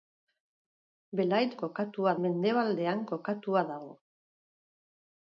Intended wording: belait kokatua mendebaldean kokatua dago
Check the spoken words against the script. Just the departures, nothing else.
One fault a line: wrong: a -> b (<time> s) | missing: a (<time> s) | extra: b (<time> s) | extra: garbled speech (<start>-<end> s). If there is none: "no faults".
no faults